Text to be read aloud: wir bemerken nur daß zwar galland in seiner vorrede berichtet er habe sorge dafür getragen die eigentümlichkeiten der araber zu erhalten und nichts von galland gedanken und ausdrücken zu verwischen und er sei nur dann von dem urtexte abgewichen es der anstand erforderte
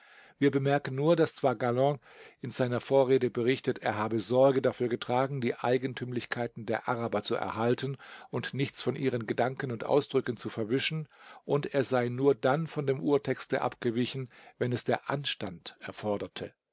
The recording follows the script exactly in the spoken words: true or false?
false